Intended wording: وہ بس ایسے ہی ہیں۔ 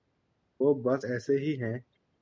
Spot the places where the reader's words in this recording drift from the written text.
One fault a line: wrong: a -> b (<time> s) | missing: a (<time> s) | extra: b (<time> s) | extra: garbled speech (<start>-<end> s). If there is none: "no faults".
no faults